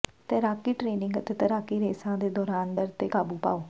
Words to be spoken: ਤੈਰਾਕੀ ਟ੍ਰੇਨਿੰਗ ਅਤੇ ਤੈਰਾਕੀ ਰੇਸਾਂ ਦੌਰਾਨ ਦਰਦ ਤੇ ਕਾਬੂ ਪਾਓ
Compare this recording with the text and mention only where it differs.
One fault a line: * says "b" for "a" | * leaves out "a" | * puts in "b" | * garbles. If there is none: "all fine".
* puts in "ਦੇ"